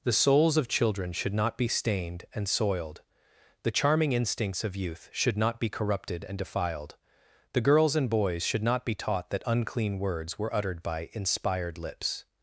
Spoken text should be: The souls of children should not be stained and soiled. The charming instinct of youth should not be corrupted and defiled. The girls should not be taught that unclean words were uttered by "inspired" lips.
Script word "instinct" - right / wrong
wrong